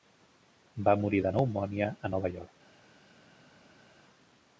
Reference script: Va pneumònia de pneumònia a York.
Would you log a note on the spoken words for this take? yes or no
yes